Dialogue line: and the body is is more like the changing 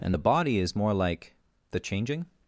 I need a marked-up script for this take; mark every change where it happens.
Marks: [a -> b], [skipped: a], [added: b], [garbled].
and the body is [skipped: is] more like the changing